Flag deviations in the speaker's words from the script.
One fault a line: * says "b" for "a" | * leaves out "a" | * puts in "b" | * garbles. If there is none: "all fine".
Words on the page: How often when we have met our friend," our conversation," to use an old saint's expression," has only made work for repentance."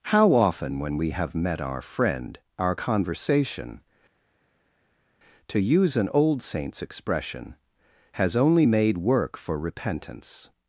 all fine